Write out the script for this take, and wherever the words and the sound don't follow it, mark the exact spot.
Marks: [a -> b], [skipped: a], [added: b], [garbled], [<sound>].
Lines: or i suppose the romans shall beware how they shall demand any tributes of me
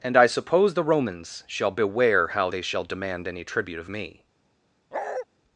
[or -> and] i suppose the romans shall beware how they shall demand any [tributes -> tribute] of me [bark]